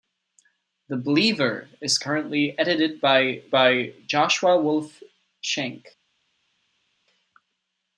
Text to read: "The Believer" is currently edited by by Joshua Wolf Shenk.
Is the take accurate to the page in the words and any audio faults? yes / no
yes